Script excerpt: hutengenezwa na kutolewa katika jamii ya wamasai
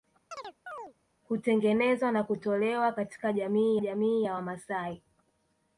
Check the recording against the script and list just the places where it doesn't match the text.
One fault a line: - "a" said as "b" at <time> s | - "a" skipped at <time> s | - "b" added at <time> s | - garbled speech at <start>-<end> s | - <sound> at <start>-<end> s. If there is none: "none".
- chirp at 0.3-0.9 s
- "jamii" added at 3.8 s